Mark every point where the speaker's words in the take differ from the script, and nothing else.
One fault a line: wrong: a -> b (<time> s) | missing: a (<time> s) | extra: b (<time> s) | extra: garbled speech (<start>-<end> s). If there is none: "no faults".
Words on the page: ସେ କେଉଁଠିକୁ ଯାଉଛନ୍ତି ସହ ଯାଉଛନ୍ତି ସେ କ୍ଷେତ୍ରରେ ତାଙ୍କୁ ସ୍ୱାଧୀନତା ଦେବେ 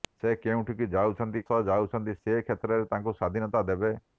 no faults